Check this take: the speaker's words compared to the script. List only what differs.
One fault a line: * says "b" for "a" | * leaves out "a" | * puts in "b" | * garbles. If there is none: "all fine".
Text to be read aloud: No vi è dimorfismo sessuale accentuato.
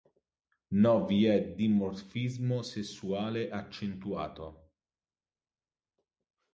all fine